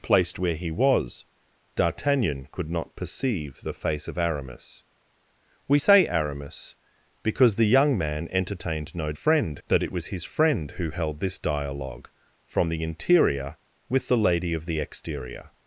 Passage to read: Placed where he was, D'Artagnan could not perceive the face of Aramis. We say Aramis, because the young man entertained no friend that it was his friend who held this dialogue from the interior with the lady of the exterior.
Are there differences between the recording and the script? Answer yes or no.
no